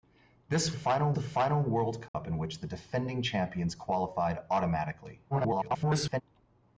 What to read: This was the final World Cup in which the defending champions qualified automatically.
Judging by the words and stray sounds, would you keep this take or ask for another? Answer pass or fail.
fail